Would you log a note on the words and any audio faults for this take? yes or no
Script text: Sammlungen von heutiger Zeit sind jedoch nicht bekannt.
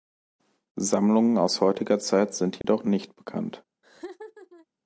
yes